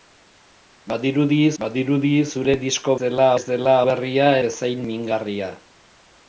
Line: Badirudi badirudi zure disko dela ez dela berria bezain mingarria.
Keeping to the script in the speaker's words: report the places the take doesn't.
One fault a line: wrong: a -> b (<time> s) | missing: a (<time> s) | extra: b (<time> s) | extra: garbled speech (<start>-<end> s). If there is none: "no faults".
no faults